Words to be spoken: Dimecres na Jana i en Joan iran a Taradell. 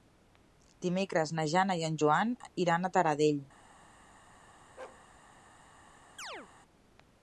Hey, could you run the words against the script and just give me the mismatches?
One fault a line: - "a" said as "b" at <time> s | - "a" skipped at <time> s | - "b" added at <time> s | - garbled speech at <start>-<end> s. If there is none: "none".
none